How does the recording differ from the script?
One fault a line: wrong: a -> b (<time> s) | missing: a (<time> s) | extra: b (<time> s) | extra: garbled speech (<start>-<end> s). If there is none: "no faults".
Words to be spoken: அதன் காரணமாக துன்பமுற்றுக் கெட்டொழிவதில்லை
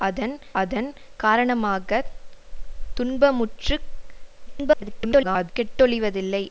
extra: அதன் (0.6 s)
extra: garbled speech (4.5-5.5 s)